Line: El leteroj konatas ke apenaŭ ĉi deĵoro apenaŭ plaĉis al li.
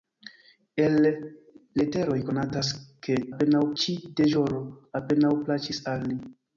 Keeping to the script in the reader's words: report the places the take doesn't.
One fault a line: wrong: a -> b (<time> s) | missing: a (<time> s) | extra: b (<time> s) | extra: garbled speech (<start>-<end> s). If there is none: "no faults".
no faults